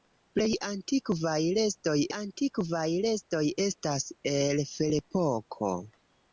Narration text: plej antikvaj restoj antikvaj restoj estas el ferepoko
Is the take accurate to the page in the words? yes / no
yes